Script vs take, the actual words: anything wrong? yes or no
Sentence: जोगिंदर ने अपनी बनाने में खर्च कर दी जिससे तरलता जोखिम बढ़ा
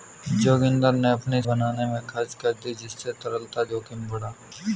no